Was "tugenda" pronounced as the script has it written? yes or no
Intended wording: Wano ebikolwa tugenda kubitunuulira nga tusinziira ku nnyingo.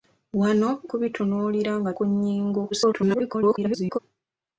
no